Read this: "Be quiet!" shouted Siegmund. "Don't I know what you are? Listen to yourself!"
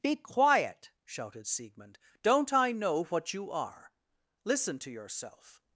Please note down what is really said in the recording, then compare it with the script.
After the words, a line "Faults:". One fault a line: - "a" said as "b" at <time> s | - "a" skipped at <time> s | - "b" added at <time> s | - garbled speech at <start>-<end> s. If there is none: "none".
"Be quiet!" shouted Siegmund. "Don't I know what you are? Listen to yourself!"
Faults:
none